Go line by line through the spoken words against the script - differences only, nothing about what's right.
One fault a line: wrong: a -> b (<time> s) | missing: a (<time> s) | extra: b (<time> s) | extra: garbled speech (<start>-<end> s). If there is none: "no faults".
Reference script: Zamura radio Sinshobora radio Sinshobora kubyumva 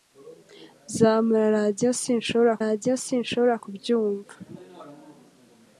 no faults